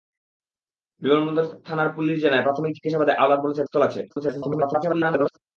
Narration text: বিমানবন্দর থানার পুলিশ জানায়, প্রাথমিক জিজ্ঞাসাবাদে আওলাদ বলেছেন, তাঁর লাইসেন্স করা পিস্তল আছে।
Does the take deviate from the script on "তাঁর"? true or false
true